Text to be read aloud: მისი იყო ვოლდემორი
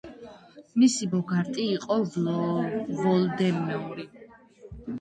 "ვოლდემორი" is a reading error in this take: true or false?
false